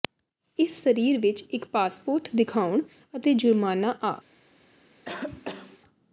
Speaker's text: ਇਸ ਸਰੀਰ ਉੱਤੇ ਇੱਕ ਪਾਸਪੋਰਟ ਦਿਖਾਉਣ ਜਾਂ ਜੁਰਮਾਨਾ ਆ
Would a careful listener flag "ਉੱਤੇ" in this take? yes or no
yes